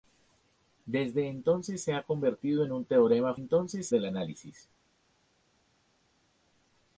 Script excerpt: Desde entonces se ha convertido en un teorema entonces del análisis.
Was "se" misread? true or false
false